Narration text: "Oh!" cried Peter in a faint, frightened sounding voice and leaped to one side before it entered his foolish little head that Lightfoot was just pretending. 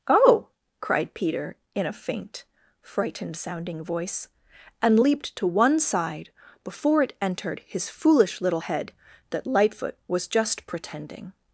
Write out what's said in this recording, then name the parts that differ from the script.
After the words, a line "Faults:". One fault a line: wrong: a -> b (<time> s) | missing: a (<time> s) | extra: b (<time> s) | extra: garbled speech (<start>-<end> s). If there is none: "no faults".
"Oh!" cried Peter in a faint, frightened sounding voice and leaped to one side before it entered his foolish little head that Lightfoot was just pretending.
Faults:
no faults